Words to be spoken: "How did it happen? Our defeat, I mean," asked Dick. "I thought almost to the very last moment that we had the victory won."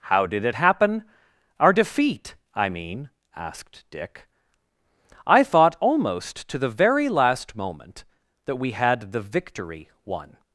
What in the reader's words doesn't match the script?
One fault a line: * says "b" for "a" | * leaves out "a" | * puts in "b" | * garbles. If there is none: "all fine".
all fine